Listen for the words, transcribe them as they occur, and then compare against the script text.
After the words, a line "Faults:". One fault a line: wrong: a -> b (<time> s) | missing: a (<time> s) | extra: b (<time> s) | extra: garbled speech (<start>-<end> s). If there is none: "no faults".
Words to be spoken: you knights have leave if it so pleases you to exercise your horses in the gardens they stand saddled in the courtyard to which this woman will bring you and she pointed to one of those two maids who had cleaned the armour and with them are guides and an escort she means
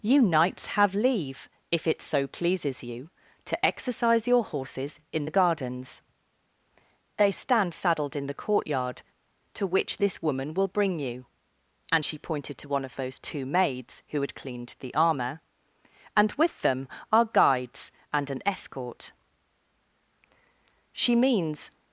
you knights have leave if it so pleases you to exercise your horses in the gardens they stand saddled in the courtyard to which this woman will bring you and she pointed to one of those two maids who had cleaned the armour and with them are guides and an escort she means
Faults:
no faults